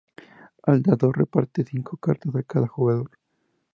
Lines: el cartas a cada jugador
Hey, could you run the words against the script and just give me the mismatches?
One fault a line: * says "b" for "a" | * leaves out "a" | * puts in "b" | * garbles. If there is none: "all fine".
* puts in "dador reparte cinco"